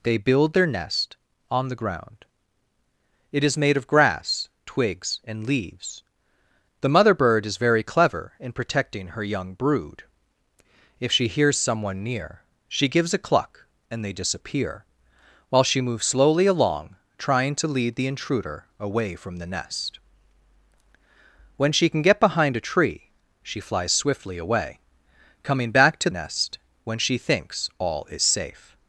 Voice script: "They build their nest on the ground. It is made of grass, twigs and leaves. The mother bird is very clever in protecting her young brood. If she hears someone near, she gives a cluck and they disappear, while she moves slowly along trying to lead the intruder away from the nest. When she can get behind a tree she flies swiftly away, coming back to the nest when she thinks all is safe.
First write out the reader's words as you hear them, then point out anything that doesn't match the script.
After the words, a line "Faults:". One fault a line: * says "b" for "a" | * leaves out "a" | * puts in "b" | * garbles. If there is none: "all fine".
"They build their nest on the ground. It is made of grass, twigs and leaves. The mother bird is very clever in protecting her young brood. If she hears someone near, she gives a cluck and they disappear, while she moves slowly along trying to lead the intruder away from the nest. When she can get behind a tree she flies swiftly away, coming back to nest when she thinks all is safe.
Faults:
* leaves out "the"